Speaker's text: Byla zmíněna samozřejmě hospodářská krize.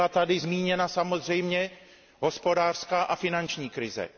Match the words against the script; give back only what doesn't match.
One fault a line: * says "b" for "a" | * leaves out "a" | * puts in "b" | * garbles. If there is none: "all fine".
* puts in "tady"
* puts in "a finanční"